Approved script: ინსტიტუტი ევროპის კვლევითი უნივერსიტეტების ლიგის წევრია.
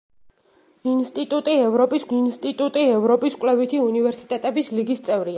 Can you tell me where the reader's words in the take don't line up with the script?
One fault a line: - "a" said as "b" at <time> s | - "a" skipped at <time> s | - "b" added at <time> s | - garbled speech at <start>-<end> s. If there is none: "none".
- "ინსტიტუტი ევროპის" added at 2.2 s